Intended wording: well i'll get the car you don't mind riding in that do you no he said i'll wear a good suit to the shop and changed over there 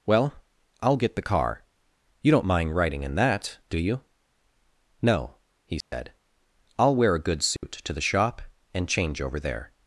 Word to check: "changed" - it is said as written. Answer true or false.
false